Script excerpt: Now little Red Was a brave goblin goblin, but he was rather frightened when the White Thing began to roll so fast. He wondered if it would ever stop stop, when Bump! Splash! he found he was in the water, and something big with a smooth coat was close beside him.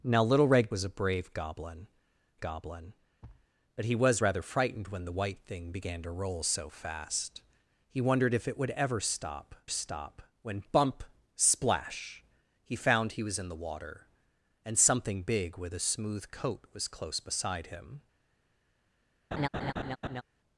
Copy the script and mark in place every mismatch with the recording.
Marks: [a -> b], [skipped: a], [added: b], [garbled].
Now little Red Was a brave goblin goblin, but he was rather frightened when the White Thing began to roll so fast. He wondered if it would ever stop stop, when Bump! Splash! he found he was in the water, and something big with a smooth coat was close beside him.